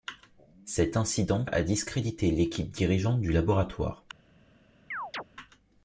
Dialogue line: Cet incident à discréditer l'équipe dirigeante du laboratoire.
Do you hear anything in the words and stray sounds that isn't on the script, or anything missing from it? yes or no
yes